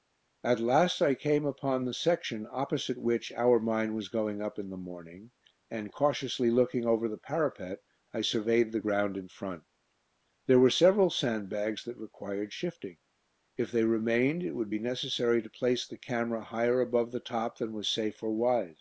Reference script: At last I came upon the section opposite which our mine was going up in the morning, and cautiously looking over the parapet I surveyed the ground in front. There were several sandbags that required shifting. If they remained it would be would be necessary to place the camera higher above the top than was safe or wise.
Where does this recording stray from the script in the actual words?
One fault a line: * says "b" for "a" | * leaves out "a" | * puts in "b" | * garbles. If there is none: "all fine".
* leaves out "would be"